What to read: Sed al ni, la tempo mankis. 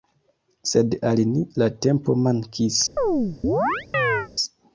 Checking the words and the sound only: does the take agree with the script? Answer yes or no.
no